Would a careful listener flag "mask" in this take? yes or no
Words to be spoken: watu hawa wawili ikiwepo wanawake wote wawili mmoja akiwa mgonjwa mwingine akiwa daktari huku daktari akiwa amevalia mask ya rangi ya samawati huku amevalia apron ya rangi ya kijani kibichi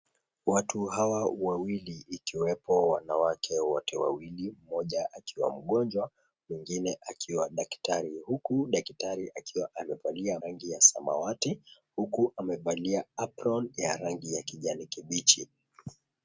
yes